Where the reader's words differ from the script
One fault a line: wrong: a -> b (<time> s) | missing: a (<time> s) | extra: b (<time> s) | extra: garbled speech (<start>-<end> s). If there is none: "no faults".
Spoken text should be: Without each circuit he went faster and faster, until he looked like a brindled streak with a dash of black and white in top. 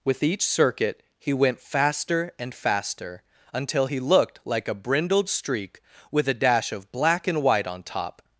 wrong: Without -> With (0.0 s)
wrong: in -> on (7.7 s)